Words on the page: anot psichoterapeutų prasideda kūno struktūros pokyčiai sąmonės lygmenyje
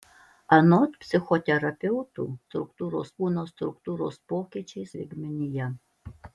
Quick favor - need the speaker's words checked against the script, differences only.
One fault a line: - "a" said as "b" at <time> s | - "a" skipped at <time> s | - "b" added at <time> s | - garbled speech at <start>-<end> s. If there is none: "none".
- "prasideda" said as "struktūros" at 2.5 s
- "sąmonės" skipped at 4.9 s